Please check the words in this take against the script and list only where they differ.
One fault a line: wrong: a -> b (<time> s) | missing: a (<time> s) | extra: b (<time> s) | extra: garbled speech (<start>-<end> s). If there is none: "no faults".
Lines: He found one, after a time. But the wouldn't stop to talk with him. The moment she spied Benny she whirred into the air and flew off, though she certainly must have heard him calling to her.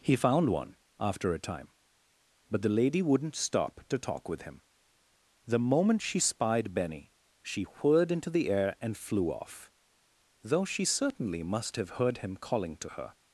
extra: lady (2.7 s)